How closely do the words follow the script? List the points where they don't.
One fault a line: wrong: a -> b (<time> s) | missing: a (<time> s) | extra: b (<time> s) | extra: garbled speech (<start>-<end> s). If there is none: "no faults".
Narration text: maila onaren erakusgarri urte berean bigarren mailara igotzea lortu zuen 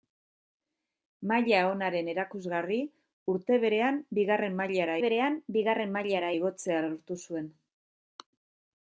extra: berean bigarren mailara (5.0 s)